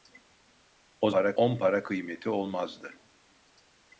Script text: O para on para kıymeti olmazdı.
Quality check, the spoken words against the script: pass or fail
pass